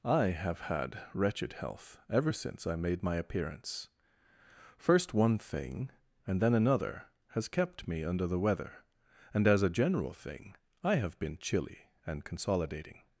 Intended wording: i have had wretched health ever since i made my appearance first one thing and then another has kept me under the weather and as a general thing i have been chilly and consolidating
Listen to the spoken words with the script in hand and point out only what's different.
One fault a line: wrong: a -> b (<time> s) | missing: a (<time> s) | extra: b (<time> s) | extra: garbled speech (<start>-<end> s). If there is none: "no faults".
no faults